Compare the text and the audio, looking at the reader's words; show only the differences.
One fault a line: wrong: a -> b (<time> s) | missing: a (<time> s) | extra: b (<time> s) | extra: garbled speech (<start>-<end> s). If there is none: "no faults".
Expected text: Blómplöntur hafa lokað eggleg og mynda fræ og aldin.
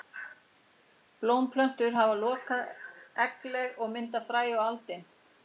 no faults